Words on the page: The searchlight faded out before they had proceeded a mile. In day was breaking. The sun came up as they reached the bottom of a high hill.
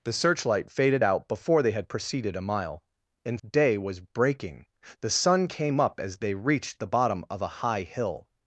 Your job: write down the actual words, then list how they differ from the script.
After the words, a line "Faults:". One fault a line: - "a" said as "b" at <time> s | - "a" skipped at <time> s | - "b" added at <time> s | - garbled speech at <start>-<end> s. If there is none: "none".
The searchlight faded out before they had proceeded a mile. In day was breaking. The sun came up as they reached the bottom of a high hill.
Faults:
none